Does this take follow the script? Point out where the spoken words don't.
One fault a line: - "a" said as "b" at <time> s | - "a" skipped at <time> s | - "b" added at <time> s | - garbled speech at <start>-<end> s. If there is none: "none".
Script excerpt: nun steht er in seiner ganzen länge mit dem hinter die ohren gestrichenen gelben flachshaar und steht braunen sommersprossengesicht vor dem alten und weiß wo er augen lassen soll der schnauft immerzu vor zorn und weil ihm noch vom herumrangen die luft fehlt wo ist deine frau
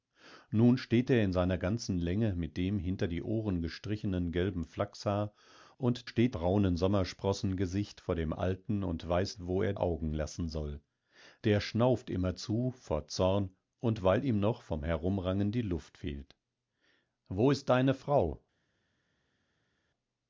none